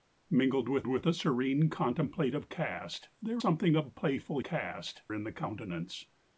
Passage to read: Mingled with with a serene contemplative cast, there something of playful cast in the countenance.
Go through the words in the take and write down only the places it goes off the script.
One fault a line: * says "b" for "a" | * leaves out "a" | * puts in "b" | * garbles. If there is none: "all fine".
all fine